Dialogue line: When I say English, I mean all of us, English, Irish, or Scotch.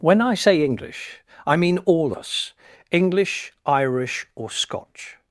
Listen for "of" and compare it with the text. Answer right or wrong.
wrong